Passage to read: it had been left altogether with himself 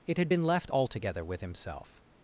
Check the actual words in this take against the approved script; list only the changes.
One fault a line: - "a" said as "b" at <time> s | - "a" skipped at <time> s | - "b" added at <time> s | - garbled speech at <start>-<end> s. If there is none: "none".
none